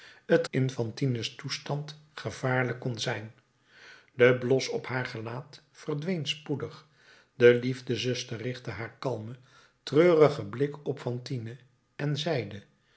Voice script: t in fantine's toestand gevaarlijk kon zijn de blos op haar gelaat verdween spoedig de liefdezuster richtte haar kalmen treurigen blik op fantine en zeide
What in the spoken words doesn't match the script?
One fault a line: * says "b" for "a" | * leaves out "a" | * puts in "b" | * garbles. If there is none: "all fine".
all fine